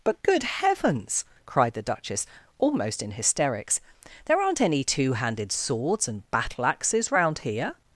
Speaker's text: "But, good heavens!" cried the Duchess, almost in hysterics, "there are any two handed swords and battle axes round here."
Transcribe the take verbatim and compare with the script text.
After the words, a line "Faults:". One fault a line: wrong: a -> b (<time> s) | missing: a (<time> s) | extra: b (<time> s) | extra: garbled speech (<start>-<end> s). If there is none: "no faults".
"But, good heavens!" cried the Duchess, almost in hysterics, "there aren't any two handed swords and battle axes round here."
Faults:
wrong: are -> aren't (4.4 s)